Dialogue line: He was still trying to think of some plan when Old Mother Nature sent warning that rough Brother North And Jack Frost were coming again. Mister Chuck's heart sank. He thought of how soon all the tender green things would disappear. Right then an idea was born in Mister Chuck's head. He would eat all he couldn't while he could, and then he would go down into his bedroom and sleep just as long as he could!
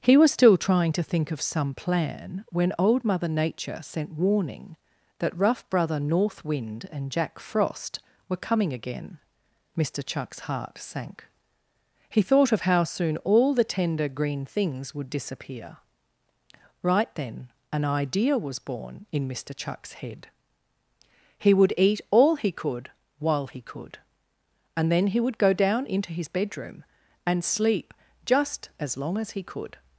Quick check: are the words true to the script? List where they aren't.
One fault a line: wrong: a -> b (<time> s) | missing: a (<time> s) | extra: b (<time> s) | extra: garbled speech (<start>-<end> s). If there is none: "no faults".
extra: Wind (6.4 s)
wrong: couldn't -> could (22.5 s)